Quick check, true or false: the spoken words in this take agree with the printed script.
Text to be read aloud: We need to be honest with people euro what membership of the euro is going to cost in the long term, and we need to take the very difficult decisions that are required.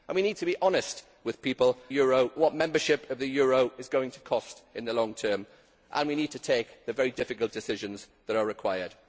true